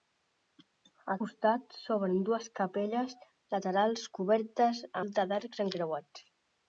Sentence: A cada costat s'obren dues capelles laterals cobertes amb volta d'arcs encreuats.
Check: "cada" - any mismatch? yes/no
yes